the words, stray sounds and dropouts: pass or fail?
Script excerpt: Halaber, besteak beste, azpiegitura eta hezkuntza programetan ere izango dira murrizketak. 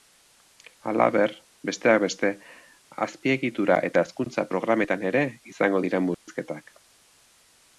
fail